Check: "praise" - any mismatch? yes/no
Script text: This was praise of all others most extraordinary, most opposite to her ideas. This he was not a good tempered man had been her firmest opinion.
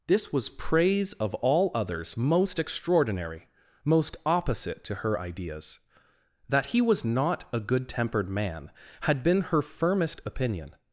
no